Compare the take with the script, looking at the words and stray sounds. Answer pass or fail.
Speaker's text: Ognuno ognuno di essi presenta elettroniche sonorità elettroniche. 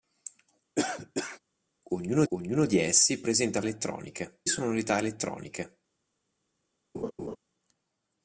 fail